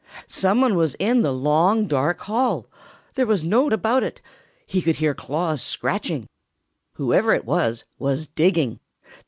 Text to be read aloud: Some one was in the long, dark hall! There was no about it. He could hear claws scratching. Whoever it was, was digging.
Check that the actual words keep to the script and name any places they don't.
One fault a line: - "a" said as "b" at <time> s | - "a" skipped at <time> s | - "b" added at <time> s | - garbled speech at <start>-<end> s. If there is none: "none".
none